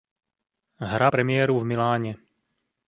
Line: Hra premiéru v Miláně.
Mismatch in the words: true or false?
false